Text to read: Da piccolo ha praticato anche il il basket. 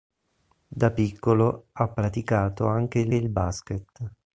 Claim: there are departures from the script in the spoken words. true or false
false